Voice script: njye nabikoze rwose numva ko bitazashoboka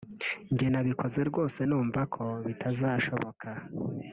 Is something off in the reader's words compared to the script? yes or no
no